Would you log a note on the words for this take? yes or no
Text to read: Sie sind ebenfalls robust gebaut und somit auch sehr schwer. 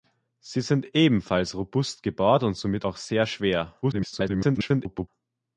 yes